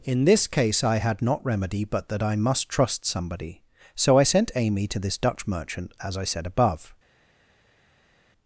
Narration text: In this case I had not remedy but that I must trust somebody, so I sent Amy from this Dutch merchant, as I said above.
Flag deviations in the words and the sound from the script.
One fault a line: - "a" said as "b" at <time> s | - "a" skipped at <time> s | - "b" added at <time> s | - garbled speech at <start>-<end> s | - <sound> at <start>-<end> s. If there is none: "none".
- "from" said as "to" at 4.9 s